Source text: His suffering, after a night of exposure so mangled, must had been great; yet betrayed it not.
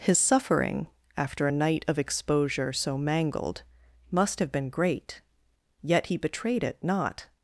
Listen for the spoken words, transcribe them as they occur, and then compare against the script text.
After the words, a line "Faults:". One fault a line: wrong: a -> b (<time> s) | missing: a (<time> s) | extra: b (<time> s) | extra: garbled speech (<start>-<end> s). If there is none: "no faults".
His suffering, after a night of exposure so mangled, must have been great; yet he betrayed it not.
Faults:
wrong: had -> have (4.4 s)
extra: he (6.0 s)